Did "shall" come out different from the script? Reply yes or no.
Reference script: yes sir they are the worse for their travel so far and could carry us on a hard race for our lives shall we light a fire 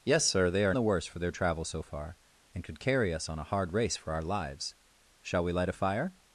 no